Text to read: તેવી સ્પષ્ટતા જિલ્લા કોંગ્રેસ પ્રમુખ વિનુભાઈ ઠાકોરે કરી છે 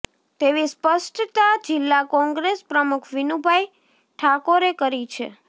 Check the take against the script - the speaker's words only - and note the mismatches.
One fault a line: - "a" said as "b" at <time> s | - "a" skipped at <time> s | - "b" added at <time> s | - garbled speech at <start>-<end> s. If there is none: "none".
none